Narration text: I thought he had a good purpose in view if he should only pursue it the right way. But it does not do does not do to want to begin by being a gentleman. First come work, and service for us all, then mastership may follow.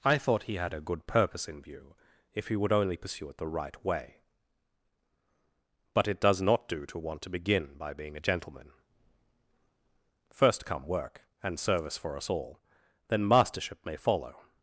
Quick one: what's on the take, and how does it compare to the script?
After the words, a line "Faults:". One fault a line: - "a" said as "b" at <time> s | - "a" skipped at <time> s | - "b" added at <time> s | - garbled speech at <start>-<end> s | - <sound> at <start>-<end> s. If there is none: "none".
I thought he had a good purpose in view if he would only pursue it the right way. But it does not do to want to begin by being a gentleman. First come work, and service for us all, then mastership may follow.
Faults:
- "should" said as "would" at 2.5 s
- "does not do" skipped at 6.8 s